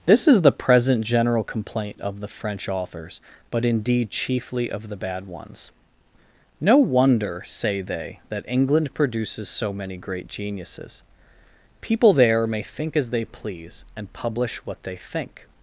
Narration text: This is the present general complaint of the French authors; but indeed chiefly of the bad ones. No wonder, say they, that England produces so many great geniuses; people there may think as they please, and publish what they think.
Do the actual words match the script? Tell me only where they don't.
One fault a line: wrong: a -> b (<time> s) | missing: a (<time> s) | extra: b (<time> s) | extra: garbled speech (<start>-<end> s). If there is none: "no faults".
no faults